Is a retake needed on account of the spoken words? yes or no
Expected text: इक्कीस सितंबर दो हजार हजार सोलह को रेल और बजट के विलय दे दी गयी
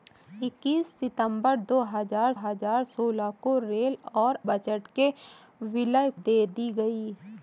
no